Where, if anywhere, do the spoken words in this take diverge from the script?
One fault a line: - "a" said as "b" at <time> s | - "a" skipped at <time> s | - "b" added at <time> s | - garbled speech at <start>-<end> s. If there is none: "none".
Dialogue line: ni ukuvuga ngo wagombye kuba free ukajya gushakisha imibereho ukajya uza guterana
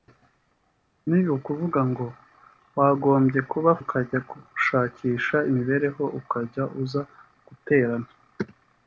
- "free" skipped at 3.7 s